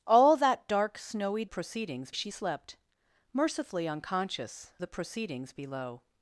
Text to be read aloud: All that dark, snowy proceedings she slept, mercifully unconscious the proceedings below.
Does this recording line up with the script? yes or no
yes